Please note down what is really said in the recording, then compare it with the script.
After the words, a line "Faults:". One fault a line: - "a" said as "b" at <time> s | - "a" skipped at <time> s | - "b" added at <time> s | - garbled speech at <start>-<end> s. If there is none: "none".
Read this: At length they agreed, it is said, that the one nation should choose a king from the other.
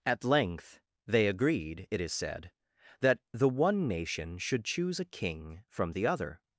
At length they agreed, it is said, that the one nation should choose a king from the other.
Faults:
none